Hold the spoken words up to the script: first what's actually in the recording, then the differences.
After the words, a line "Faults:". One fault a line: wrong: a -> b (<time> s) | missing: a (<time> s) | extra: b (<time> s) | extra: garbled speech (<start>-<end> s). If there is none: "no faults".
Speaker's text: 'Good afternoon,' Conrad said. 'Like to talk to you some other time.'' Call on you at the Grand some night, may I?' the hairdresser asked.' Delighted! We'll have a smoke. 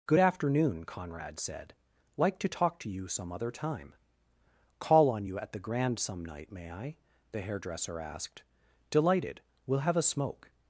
'Good afternoon,' Conrad said. 'Like to talk to you some other time.'' Call on you at the Grand some night, may I?' the hairdresser asked.' Delighted! We'll have a smoke.
Faults:
no faults